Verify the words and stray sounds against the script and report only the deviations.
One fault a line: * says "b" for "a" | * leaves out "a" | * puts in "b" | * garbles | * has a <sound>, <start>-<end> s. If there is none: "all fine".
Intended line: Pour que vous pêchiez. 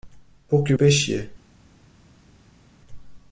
* leaves out "vous"